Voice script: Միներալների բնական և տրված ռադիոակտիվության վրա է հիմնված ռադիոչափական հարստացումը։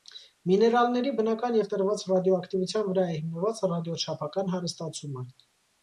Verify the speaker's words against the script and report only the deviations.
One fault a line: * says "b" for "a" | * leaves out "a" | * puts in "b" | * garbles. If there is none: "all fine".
all fine